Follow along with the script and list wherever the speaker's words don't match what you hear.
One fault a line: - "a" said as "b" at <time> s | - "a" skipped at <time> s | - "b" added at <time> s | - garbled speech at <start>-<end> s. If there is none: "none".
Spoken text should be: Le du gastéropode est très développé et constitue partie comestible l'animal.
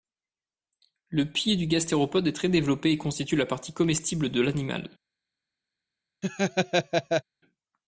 - "pied" added at 1.3 s
- "la" added at 3.4 s
- "de" added at 4.3 s